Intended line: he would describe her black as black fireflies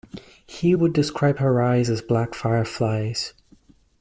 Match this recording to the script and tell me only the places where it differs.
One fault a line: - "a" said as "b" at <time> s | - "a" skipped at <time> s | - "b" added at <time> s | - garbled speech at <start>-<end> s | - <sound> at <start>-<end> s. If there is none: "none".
- "black" said as "eyes" at 1.6 s